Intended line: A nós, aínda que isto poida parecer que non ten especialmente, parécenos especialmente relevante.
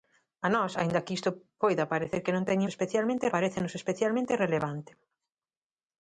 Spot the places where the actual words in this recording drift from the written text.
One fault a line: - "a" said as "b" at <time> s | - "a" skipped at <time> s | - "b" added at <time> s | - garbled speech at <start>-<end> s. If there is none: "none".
none